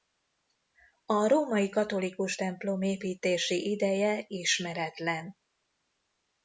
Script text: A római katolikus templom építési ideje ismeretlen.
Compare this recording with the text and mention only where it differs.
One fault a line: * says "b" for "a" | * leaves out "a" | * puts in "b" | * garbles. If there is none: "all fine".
all fine